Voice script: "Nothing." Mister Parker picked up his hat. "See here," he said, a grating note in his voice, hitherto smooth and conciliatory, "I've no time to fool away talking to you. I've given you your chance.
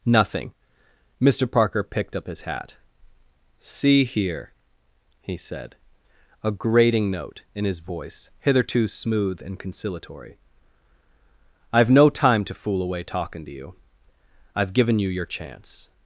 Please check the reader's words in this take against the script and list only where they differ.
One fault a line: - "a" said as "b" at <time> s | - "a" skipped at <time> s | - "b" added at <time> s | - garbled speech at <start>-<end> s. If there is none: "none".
none